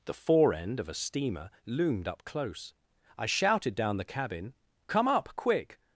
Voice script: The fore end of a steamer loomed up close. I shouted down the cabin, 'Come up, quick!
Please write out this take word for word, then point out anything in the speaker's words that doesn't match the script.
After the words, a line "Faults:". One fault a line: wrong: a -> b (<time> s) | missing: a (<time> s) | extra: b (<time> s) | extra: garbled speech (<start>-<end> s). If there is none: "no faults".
The fore end of a steamer loomed up close. I shouted down the cabin, 'Come up, quick!
Faults:
no faults